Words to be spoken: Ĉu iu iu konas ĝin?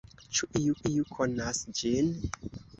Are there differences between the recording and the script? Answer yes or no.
no